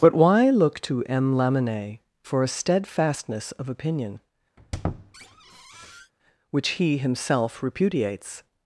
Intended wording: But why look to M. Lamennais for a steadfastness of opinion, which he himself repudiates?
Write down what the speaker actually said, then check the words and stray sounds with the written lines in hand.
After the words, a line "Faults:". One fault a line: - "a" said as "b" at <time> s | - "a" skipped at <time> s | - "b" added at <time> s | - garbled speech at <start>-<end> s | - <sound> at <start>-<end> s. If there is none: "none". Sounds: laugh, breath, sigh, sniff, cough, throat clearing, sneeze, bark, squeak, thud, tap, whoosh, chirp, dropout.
But why look to M. Lamennais for a steadfastness of opinion, which he himself repudiates?
Faults:
- squeak at 4.6-6.1 s